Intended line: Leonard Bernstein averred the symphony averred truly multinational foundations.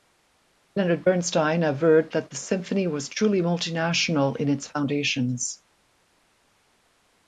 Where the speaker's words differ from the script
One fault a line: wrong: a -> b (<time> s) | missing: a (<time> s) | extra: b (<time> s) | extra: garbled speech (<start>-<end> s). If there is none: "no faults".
extra: that (2.1 s)
wrong: averred -> was (2.9 s)
extra: in its (4.4 s)